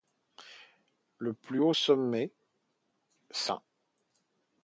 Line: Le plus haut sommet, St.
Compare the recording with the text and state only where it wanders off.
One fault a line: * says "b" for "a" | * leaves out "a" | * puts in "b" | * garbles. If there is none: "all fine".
all fine